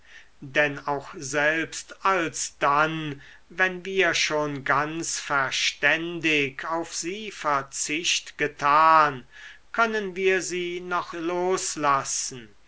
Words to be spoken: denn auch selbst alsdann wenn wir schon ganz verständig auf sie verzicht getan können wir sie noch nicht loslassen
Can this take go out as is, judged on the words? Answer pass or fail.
fail